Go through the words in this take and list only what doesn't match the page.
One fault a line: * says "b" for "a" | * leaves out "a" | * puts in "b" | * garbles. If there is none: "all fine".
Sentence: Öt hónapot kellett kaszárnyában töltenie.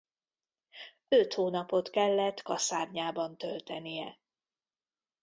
all fine